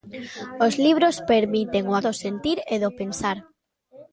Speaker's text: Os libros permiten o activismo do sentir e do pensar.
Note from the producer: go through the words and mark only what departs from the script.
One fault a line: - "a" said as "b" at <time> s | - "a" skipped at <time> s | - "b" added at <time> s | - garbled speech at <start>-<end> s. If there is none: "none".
- "activismo" skipped at 1.9 s